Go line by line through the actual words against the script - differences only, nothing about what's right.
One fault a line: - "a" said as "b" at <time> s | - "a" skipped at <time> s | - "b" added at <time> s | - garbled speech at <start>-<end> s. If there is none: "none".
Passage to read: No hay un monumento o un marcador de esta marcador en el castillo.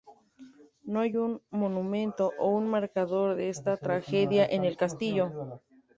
- "marcador" said as "tragedia" at 3.7 s